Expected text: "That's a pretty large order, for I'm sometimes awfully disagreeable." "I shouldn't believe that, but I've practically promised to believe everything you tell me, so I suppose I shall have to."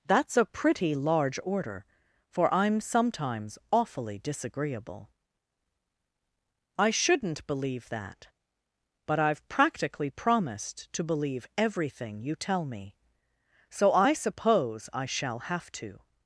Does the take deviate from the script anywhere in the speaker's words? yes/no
no